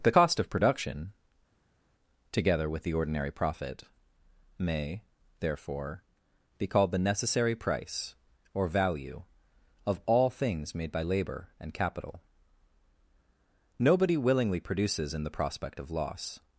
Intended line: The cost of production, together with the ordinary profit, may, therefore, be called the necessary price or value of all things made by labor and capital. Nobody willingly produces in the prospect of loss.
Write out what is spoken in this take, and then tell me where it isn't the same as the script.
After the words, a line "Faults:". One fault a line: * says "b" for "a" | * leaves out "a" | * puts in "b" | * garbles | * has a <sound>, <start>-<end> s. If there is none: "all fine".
The cost of production, together with the ordinary profit, may, therefore, be called the necessary price or value of all things made by labor and capital. Nobody willingly produces in the prospect of loss.
Faults:
all fine